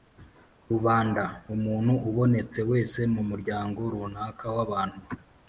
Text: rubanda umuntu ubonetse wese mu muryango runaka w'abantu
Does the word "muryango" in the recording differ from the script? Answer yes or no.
no